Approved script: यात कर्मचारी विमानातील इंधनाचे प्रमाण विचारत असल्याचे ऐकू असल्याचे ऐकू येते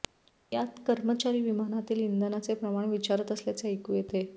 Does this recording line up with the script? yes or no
no